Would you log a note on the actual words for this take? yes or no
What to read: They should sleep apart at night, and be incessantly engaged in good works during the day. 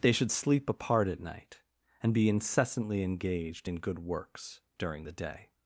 no